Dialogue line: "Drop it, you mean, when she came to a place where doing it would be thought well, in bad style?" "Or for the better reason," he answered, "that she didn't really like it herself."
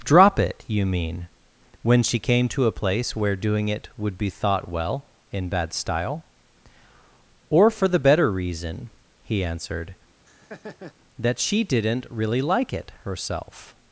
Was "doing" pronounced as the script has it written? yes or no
yes